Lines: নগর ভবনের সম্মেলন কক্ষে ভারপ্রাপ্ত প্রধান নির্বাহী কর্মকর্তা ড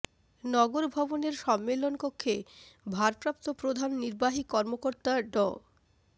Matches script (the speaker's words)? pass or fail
pass